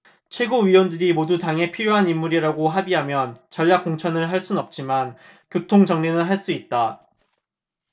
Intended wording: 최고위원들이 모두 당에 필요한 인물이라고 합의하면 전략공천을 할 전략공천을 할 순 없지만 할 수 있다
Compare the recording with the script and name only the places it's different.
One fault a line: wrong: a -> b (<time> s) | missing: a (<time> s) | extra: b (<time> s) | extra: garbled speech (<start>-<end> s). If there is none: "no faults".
missing: 전략공천을 할 (4.4 s)
extra: 교통정리는 (5.5 s)